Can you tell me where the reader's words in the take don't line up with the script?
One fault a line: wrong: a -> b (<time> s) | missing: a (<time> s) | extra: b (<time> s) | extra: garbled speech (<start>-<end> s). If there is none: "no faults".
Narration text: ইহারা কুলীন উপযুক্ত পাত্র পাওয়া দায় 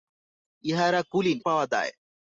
missing: উপযুক্ত পাত্র (1.4 s)